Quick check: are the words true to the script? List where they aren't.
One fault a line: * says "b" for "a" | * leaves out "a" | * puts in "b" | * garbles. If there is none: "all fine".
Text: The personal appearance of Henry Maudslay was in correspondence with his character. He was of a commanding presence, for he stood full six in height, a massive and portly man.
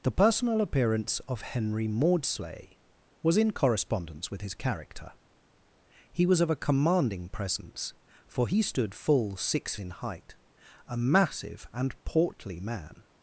all fine